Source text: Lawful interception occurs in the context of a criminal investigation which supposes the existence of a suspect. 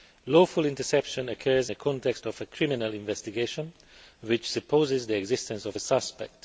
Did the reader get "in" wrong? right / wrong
wrong